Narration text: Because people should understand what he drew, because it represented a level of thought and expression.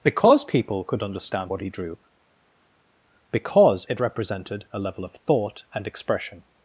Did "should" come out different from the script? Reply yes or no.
yes